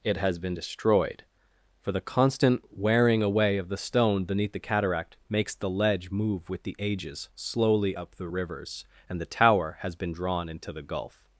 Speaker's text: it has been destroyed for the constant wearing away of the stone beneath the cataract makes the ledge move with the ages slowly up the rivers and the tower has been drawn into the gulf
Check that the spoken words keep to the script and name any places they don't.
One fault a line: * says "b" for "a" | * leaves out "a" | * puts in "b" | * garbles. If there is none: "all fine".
all fine